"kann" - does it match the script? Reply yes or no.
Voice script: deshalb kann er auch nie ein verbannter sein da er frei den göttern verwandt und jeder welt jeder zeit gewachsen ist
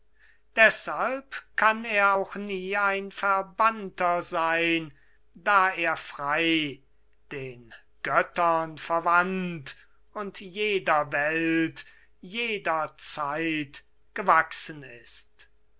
yes